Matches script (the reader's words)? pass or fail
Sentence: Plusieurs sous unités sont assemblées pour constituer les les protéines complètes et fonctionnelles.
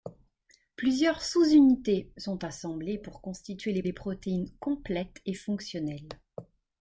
pass